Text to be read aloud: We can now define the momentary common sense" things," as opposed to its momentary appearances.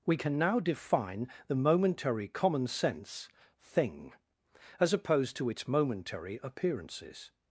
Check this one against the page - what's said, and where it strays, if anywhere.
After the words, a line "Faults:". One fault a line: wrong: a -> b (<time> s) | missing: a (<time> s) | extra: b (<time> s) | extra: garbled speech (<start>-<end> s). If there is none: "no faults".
We can now define the momentary common sense" thing," as opposed to its momentary appearances.
Faults:
wrong: things -> thing (3.6 s)